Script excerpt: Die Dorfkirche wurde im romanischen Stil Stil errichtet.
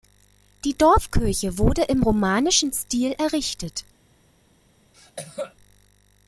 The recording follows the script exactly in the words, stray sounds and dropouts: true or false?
false